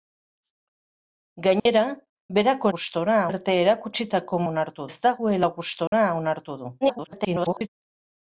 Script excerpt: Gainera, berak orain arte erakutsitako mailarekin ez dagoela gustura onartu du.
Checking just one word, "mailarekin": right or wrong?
wrong